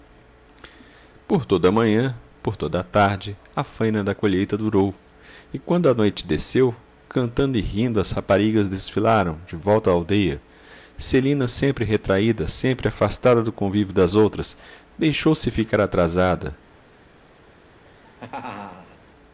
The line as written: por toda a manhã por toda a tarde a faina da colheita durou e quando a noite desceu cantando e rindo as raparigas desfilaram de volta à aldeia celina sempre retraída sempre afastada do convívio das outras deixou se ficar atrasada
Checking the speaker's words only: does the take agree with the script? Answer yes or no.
yes